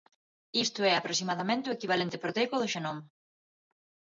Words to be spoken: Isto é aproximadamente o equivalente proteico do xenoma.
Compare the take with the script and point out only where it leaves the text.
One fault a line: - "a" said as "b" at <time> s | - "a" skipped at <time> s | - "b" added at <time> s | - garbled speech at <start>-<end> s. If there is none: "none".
none